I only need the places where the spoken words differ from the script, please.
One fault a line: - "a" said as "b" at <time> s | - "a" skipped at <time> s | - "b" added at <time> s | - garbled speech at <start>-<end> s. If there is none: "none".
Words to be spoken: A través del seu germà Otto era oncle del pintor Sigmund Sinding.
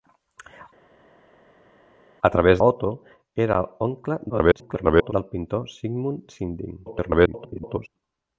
- "del seu germà" skipped at 2.6 s
- garbled speech at 4.3-5.1 s
- garbled speech at 6.9-7.9 s